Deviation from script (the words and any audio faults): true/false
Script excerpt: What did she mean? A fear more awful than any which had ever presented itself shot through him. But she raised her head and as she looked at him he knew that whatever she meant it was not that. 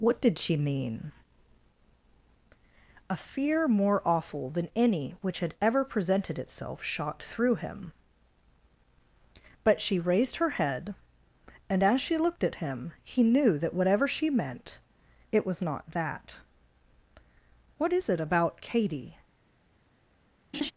true